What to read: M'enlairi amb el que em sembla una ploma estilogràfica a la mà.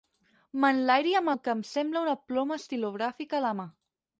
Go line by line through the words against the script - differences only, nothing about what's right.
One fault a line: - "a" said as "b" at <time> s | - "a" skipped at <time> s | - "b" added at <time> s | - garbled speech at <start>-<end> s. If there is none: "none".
none